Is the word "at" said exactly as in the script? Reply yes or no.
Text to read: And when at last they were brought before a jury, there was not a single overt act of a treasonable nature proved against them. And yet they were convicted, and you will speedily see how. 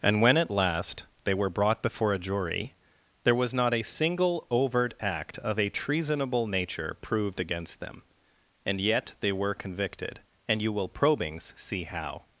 yes